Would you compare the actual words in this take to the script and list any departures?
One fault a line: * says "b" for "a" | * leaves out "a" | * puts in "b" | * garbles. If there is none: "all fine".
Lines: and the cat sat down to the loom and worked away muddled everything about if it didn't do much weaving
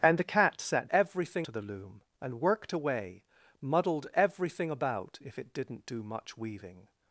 * says "everything" for "down"